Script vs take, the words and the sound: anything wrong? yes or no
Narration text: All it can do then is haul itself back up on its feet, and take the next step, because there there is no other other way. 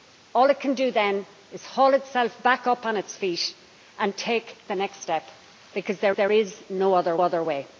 no